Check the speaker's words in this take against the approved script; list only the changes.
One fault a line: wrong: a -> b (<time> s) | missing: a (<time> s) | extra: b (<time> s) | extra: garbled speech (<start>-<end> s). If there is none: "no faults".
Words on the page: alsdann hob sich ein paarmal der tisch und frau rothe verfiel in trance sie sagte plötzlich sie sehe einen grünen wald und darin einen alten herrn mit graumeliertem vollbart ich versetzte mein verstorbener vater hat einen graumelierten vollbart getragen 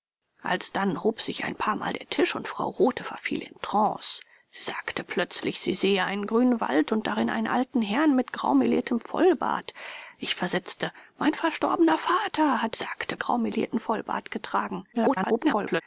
wrong: einen -> sagte (12.8 s)
extra: garbled speech (14.9-15.8 s)